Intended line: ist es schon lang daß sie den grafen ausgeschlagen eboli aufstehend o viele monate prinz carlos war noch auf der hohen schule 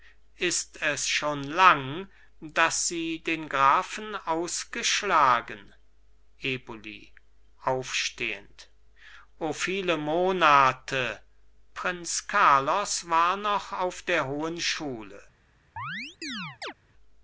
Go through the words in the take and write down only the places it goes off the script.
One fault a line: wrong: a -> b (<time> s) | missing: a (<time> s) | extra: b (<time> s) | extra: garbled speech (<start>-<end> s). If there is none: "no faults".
no faults